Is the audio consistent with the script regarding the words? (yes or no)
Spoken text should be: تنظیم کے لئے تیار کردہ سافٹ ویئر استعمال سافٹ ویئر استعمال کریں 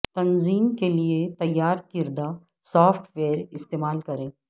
no